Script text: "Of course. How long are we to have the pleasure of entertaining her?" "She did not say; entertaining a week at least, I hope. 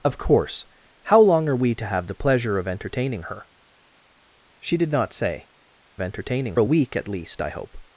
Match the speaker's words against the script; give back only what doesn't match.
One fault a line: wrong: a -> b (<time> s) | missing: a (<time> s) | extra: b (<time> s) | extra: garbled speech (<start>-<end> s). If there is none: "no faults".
no faults